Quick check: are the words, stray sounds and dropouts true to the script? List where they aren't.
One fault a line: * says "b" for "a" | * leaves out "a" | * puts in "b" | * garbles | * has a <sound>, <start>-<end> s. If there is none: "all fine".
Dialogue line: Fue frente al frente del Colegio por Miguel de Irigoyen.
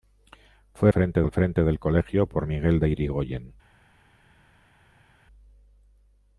all fine